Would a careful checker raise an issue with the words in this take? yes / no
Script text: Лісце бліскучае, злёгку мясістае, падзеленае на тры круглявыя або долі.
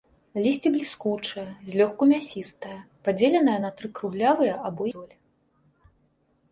no